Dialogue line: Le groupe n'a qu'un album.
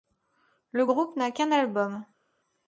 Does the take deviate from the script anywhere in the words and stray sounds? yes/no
no